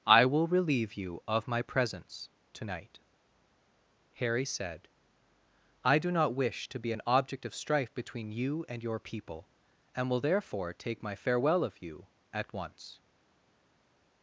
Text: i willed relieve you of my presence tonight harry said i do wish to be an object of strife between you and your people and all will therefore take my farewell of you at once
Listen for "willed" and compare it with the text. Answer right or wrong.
wrong